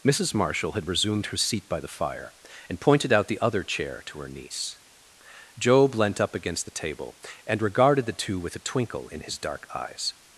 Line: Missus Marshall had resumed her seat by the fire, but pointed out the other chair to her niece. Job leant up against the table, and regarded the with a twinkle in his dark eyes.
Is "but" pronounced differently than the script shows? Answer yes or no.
yes